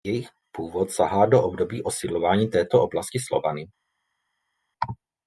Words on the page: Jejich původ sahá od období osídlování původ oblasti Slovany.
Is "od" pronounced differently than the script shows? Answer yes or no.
yes